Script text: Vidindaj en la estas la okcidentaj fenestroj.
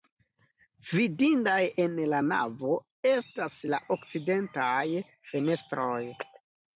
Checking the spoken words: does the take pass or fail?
fail